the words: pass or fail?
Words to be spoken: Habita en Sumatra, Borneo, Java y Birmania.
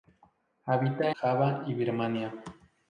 fail